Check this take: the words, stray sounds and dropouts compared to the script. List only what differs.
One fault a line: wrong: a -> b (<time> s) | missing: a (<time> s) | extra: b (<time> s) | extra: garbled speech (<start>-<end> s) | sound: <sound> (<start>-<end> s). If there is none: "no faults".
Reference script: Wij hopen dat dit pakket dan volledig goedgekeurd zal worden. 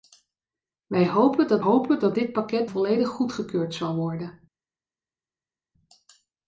extra: hopen dat (1.6 s)
missing: dan (2.7 s)